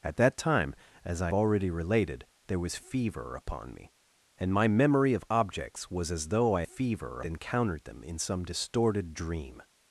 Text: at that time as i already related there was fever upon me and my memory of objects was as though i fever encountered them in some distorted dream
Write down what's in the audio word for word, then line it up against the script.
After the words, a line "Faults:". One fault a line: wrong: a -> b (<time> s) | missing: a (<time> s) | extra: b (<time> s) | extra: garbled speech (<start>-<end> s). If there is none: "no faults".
at that time as i already related there was fever upon me and my memory of objects was as though i fever encountered them in some distorted dream
Faults:
no faults